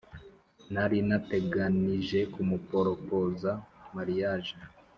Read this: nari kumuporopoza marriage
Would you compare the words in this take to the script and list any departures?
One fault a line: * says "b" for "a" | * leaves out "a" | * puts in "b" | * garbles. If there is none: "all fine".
* puts in "nateganije"